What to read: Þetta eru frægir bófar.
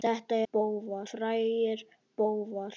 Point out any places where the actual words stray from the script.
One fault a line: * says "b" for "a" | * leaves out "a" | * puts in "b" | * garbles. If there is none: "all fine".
* says "bófar" for "eru"